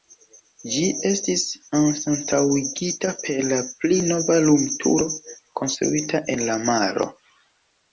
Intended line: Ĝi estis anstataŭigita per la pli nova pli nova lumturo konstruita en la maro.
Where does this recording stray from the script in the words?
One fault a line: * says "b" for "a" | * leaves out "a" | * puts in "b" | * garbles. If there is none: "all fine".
* leaves out "pli nova"